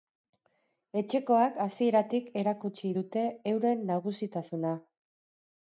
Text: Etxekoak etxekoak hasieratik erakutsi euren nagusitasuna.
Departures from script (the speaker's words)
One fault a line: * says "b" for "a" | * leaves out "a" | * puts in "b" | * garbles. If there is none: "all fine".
* leaves out "etxekoak"
* puts in "dute"